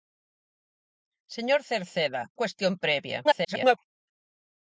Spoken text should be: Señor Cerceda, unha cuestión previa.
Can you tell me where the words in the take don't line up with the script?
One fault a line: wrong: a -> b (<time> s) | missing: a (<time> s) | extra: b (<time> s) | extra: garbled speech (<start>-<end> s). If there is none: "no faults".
missing: unha (2.2 s)
extra: garbled speech (3.2-3.8 s)